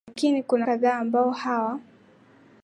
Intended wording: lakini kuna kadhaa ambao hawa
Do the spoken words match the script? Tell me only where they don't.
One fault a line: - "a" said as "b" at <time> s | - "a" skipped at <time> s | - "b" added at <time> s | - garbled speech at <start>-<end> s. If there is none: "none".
none